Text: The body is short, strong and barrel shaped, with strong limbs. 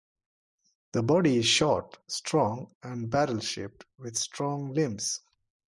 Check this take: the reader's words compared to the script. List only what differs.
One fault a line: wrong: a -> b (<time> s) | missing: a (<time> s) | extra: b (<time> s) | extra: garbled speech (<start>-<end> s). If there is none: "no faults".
no faults